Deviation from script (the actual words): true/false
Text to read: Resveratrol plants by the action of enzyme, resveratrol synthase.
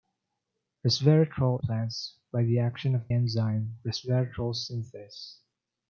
false